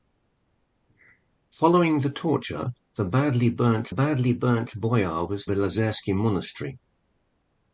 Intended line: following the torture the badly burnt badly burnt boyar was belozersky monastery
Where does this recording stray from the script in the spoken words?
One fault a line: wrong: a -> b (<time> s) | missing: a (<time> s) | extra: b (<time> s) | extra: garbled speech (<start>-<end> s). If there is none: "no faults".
no faults